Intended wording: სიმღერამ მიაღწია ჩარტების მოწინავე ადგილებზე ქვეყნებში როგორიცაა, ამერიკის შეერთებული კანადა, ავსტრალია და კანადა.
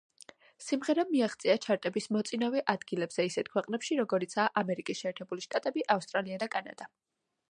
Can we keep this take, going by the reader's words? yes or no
no